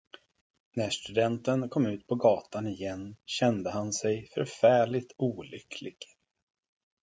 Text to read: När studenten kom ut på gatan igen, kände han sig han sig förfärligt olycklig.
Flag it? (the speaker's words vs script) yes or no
yes